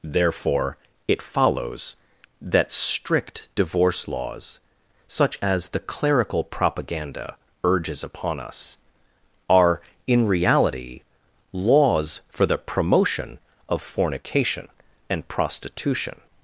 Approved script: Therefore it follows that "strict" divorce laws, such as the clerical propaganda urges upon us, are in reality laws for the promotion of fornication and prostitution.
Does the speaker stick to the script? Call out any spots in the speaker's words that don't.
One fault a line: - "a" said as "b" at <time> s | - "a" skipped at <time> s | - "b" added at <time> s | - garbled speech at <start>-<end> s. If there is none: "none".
none